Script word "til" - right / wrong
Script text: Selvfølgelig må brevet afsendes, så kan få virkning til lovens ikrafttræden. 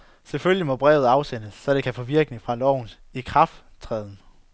wrong